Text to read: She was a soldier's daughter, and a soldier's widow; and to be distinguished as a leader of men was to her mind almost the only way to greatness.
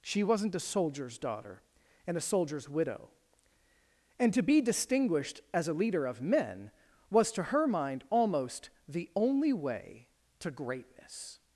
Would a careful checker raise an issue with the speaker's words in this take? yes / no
yes